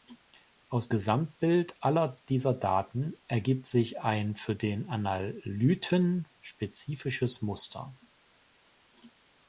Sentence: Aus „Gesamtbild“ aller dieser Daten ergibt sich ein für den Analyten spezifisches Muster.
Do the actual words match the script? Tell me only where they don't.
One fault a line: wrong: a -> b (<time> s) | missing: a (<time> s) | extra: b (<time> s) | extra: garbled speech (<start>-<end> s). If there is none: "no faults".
no faults